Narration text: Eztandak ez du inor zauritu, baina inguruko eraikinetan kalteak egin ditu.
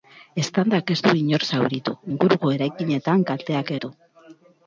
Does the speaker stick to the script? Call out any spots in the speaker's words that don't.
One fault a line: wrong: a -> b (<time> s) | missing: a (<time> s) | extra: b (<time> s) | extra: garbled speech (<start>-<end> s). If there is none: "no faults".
missing: baina (2.0 s)
missing: egin (3.8 s)